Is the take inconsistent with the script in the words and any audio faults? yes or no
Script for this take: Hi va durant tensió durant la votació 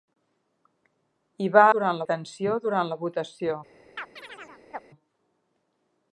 yes